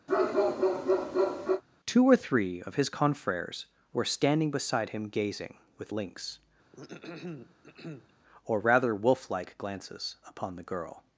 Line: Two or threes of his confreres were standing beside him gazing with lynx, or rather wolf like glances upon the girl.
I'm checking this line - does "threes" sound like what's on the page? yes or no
no